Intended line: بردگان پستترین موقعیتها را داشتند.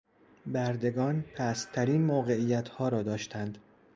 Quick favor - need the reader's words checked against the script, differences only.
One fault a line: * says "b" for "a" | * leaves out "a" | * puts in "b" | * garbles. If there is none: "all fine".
all fine